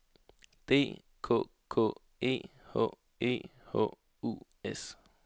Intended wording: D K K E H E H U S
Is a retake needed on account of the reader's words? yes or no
no